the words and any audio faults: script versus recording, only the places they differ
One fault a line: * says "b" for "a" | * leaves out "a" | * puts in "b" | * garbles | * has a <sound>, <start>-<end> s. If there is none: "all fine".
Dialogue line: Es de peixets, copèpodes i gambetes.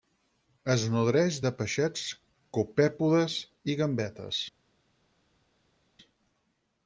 * puts in "nodreix"